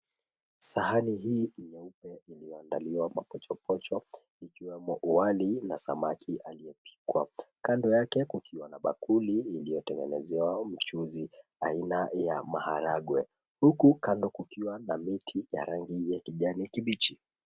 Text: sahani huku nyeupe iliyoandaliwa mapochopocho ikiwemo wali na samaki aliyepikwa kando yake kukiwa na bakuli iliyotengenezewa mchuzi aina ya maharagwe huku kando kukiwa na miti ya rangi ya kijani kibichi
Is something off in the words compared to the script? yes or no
yes